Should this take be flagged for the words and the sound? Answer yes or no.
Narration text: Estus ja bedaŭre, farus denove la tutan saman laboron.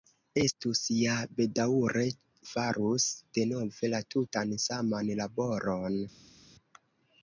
no